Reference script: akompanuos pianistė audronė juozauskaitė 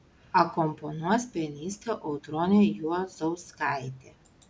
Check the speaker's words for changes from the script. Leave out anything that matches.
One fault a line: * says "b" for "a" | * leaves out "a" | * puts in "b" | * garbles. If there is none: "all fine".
all fine